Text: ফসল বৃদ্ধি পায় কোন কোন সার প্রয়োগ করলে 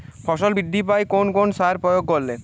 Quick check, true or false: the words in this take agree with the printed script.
true